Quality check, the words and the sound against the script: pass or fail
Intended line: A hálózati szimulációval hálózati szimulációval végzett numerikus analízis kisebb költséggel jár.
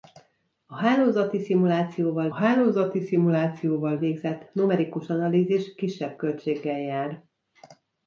pass